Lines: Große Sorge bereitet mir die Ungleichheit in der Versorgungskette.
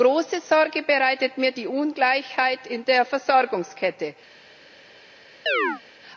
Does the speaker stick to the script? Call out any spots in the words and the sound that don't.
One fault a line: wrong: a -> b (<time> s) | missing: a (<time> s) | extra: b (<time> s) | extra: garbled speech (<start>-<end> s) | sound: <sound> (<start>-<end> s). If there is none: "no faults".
sound: chirp (5.5-5.8 s)